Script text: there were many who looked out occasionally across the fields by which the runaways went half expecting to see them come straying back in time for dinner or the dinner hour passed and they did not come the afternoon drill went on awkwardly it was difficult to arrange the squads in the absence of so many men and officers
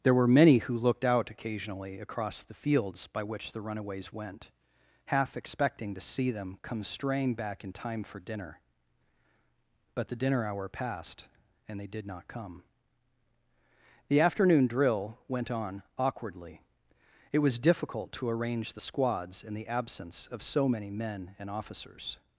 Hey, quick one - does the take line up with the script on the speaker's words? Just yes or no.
no